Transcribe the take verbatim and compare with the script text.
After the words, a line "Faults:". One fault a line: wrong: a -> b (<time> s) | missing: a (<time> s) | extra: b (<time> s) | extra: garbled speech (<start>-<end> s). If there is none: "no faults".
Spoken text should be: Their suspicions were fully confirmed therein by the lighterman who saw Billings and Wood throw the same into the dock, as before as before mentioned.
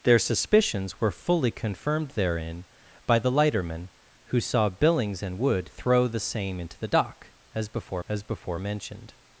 Their suspicions were fully confirmed therein by the lighterman who saw Billings and Wood throw the same into the dock, as before as before mentioned.
Faults:
no faults